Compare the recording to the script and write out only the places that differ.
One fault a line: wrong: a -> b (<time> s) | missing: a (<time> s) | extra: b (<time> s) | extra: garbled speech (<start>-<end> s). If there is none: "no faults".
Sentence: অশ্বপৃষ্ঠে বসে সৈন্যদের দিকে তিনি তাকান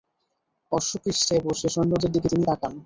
no faults